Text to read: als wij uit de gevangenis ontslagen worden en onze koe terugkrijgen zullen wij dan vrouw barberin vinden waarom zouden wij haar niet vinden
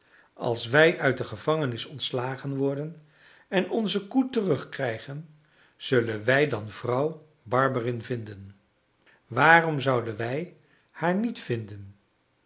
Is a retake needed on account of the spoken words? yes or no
no